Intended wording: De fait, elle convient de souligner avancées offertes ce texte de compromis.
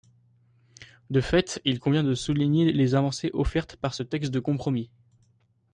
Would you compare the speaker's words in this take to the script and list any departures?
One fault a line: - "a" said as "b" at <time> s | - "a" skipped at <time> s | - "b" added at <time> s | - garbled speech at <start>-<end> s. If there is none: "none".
- "elle" said as "il" at 1.6 s
- "les" added at 2.7 s
- "par" added at 3.8 s